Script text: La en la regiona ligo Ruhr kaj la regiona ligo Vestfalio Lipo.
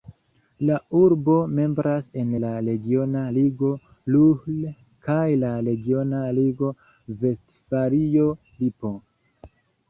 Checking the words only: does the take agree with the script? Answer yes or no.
no